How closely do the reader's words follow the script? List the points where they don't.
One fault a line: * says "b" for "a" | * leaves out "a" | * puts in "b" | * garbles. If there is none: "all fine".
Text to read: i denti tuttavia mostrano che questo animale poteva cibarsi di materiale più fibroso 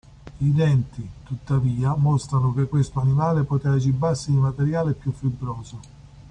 all fine